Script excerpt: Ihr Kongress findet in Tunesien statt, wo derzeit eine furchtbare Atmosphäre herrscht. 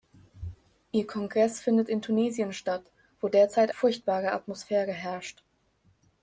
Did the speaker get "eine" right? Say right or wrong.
wrong